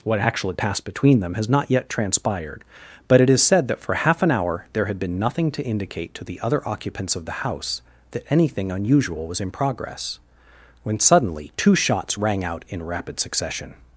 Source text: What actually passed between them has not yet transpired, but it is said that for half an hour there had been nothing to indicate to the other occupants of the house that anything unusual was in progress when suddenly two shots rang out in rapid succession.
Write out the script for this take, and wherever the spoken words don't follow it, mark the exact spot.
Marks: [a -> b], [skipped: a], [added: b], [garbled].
What actually passed between them has not yet transpired, but it is said that for half an hour there had been nothing to indicate to the other occupants of the house that anything unusual was in progress when suddenly two shots rang out in rapid succession.